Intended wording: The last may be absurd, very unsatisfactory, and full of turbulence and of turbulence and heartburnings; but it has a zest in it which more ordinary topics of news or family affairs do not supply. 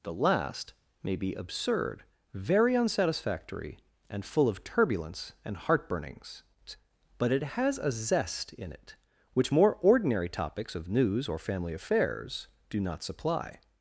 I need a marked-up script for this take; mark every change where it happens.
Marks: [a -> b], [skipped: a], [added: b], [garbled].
The last may be absurd, very unsatisfactory, and full of turbulence and [skipped: of turbulence and] heartburnings; but it has a zest in it which more ordinary topics of news or family affairs do not supply.